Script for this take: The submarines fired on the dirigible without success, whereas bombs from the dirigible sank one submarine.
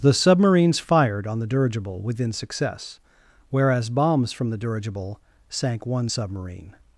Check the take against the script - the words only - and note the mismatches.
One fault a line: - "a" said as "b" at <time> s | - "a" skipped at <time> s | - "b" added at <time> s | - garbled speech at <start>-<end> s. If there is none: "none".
- "without" said as "within" at 2.0 s